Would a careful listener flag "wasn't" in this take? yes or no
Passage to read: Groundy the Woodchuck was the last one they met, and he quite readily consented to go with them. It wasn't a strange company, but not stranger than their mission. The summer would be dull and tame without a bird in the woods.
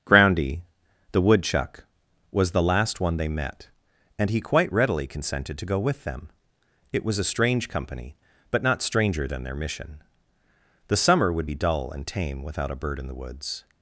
yes